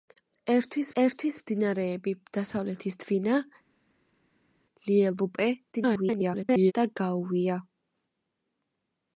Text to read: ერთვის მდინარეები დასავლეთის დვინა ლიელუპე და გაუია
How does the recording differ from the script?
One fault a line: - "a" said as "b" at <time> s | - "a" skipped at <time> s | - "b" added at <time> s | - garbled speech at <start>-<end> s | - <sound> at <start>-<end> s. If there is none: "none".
- "ერთვის" added at 1.0 s
- garbled speech at 5.7-6.7 s